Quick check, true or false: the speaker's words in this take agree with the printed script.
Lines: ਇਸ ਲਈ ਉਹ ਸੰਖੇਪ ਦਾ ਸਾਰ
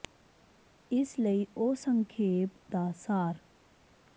true